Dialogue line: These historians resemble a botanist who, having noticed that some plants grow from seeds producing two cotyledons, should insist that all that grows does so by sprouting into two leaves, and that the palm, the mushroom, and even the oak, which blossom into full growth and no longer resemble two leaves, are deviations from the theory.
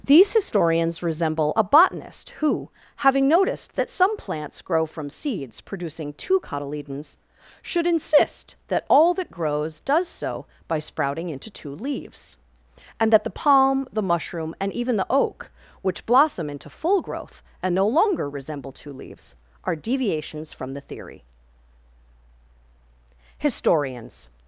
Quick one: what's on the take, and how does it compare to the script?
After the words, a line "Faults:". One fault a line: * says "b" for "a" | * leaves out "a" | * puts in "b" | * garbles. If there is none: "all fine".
These historians resemble a botanist who, having noticed that some plants grow from seeds producing two cotyledons, should insist that all that grows does so by sprouting into two leaves, and that the palm, the mushroom, and even the oak, which blossom into full growth and no longer resemble two leaves, are deviations from the theory. Historians
Faults:
* puts in "Historians"